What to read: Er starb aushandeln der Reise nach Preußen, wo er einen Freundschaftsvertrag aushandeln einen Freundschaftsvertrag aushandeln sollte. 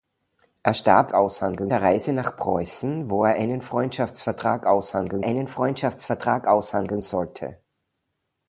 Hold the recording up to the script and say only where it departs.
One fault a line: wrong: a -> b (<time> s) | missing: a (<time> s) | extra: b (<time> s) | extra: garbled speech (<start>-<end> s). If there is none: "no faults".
no faults